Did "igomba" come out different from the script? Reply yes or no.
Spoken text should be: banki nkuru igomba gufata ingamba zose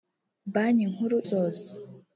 yes